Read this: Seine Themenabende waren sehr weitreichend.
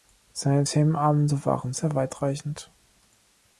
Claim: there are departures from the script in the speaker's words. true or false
false